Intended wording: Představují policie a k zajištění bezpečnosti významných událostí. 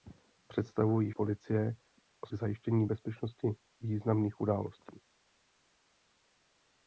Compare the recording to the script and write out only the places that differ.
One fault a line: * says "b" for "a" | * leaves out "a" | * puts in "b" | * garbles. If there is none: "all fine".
all fine